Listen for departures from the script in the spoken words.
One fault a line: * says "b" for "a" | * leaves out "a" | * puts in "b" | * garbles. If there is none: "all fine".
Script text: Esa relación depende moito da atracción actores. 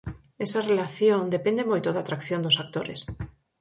* puts in "dos"